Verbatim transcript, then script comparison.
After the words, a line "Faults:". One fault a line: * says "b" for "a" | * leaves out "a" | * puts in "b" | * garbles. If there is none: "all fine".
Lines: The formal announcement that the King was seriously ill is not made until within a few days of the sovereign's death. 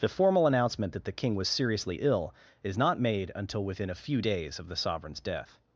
The formal announcement that the King was seriously ill is not made until within a few days of the sovereign's death.
Faults:
all fine